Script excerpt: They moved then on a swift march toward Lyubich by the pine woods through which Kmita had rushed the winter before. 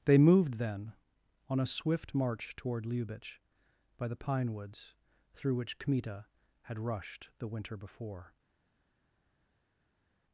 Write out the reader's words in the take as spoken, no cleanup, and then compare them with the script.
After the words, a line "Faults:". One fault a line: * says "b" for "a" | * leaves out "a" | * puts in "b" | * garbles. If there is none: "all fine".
They moved then on a swift march toward Lyubich by the pine woods through which Kmita had rushed the winter before.
Faults:
all fine